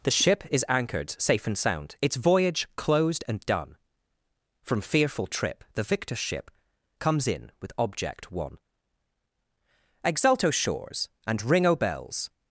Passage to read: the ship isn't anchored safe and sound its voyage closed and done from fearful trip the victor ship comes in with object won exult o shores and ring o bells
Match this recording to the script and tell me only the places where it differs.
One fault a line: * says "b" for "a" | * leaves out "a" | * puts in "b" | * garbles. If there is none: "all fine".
* says "is" for "isn't"